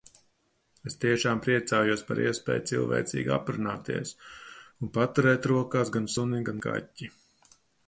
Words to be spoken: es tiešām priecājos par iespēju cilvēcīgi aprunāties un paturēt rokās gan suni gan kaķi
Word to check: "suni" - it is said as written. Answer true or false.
true